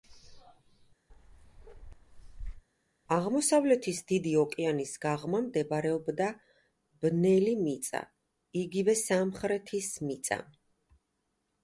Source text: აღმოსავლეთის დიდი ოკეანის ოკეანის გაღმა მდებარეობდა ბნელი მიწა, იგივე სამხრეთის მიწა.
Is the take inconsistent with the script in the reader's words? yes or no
yes